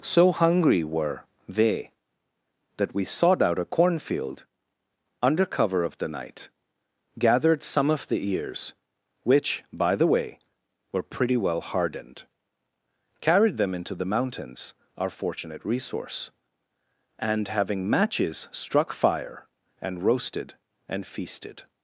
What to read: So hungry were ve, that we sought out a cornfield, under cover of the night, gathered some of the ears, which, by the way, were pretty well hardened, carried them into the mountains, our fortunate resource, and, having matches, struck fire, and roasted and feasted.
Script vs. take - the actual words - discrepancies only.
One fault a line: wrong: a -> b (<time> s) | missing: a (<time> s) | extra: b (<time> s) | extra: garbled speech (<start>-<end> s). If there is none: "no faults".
wrong: ve -> they (1.5 s)